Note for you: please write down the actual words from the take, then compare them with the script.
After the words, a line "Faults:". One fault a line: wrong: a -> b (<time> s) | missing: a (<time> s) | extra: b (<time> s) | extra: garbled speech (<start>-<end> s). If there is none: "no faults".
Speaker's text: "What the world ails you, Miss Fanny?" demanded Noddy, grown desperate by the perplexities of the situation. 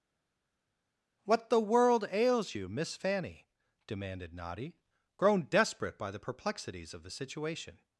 "What the world ails you, Miss Fanny?" demanded Noddy, grown desperate by the perplexities of the situation.
Faults:
no faults